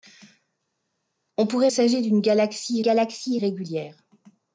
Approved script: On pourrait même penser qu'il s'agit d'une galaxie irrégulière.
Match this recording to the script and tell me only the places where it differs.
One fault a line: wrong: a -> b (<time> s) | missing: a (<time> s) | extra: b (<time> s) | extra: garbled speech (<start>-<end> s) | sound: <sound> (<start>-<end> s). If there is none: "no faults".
missing: même penser qu'il (1.7 s)
extra: galaxie (2.8 s)